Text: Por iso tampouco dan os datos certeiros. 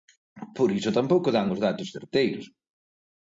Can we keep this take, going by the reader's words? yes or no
yes